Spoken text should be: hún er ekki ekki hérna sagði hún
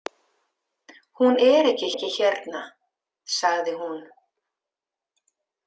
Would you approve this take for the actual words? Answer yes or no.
yes